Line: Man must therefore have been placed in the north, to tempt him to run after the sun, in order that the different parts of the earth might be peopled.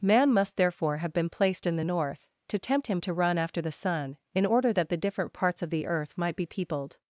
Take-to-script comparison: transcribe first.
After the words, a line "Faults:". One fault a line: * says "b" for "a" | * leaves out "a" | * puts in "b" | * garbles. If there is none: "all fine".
Man must therefore have been placed in the north, to tempt him to run after the sun, in order that the different parts of the earth might be peopled.
Faults:
all fine